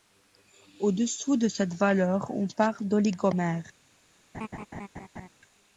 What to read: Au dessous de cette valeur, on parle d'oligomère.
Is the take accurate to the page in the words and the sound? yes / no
no